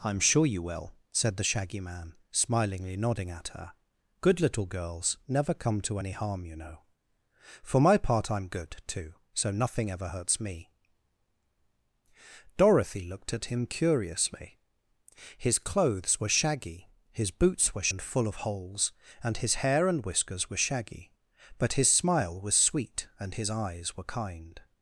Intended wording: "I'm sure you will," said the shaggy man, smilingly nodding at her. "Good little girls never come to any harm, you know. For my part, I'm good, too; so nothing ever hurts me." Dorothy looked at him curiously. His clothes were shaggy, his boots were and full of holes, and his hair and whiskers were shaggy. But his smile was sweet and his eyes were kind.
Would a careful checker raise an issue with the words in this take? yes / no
no